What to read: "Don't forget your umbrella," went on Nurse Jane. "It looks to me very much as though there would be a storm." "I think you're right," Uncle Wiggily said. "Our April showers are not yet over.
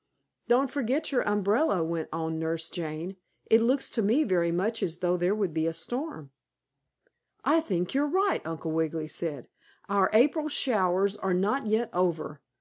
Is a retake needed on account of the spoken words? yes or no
no